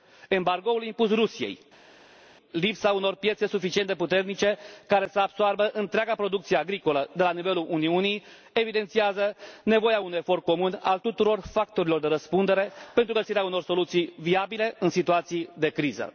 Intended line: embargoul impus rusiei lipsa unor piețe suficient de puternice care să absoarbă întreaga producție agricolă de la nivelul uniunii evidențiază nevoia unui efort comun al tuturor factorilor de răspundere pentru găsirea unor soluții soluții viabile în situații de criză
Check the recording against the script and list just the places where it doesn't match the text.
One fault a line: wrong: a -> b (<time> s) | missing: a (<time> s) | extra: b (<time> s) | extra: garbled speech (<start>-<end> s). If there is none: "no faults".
missing: soluții (14.1 s)